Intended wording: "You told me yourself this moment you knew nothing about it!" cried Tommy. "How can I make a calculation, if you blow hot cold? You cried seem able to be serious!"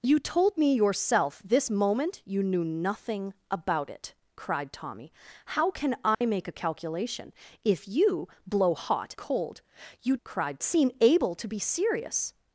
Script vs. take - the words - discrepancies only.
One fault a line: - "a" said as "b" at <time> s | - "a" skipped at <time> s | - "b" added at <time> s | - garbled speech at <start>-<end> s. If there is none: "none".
none